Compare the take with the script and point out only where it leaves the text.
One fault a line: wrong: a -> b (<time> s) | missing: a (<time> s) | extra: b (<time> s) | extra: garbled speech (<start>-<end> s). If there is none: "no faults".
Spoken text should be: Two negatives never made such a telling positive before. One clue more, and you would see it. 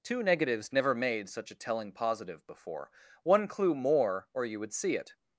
wrong: and -> or (4.3 s)